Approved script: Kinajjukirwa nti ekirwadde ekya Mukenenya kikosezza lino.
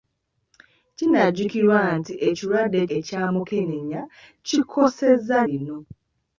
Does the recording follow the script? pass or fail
pass